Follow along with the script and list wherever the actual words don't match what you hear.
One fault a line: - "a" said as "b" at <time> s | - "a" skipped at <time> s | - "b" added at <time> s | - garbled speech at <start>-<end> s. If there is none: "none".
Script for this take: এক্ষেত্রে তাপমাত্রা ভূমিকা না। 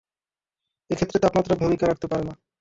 - "রাখতে পারে" added at 1.9 s